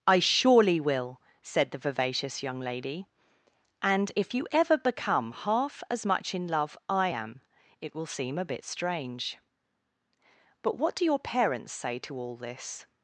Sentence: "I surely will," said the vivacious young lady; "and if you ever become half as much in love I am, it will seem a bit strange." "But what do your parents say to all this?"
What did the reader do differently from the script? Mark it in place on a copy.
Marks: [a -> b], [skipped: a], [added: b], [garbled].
"I surely will," said the vivacious young lady; "and if you ever become half as much in love I am, it will seem a bit strange." "But what do your parents say to all this?"